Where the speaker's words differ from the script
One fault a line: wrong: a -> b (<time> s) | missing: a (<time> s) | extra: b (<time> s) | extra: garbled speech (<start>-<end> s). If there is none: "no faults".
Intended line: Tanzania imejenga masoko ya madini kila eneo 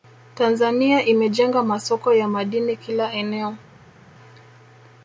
no faults